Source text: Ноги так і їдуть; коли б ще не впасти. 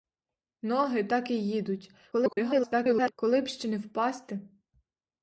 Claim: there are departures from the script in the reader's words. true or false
true